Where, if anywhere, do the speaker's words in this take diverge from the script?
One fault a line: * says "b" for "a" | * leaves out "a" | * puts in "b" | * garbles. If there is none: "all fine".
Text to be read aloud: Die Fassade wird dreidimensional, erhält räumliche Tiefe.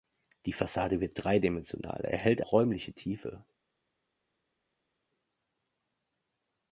all fine